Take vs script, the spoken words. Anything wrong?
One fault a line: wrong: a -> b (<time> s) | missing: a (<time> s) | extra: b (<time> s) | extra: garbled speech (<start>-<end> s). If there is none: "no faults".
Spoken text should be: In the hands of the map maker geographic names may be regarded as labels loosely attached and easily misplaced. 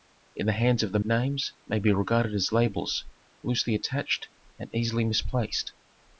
missing: map maker geographic (1.0 s)